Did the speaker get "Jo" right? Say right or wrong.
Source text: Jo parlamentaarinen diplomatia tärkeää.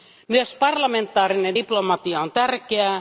wrong